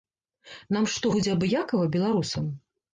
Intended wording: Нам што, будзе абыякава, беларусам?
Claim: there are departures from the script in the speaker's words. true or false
false